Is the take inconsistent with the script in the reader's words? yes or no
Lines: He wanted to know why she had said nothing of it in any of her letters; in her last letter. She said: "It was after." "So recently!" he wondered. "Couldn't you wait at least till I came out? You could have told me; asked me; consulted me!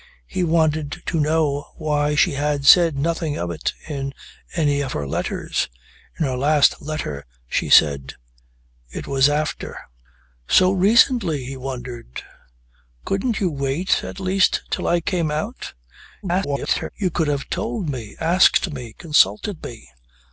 yes